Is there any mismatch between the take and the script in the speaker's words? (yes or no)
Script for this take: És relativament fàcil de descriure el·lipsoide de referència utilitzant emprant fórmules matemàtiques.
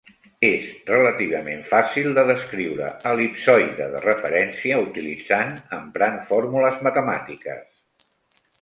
no